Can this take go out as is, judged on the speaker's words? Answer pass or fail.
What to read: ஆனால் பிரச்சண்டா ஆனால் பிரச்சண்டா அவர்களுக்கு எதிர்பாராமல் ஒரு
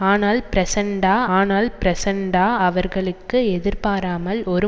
pass